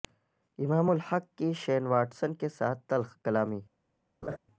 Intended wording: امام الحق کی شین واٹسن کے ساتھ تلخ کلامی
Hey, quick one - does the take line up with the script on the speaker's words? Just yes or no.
yes